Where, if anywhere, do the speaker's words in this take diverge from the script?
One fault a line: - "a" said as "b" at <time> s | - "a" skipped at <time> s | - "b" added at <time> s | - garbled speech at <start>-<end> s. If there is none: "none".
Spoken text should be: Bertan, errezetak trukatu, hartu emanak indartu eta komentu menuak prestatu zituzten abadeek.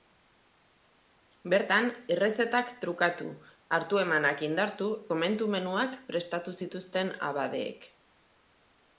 - "eta" skipped at 4.9 s